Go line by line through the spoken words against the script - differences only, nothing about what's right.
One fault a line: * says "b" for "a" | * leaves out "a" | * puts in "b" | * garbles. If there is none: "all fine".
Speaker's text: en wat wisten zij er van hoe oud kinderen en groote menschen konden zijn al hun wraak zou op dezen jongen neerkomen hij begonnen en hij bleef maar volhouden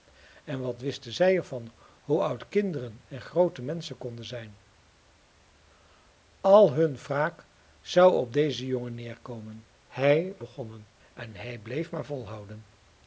all fine